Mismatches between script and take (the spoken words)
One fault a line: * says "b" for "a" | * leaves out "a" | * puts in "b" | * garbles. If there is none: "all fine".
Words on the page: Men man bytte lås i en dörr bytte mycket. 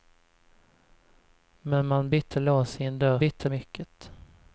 all fine